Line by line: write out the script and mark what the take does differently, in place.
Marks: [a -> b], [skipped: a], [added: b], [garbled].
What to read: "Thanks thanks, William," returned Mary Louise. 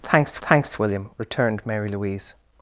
"Thanks thanks, William," returned Mary Louise.